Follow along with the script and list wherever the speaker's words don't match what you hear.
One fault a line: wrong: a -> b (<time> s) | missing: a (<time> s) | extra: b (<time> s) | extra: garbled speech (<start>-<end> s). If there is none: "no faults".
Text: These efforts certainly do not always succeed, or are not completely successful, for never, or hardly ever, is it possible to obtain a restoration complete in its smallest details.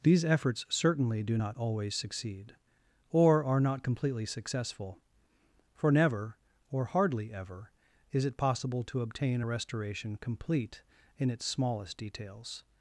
no faults